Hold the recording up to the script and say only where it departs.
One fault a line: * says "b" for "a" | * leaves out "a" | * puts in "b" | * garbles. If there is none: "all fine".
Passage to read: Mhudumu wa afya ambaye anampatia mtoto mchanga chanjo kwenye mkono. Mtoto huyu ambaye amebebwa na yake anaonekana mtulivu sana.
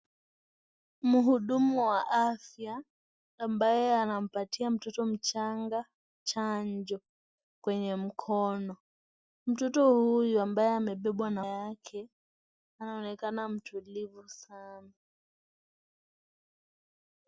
all fine